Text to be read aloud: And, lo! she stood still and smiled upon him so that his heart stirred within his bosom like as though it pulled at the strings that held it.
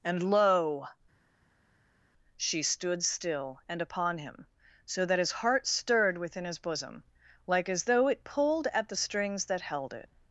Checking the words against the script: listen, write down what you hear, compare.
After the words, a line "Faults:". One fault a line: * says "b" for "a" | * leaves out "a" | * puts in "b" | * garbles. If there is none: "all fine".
And, lo! she stood still and upon him so that his heart stirred within his bosom like as though it pulled at the strings that held it.
Faults:
* leaves out "smiled"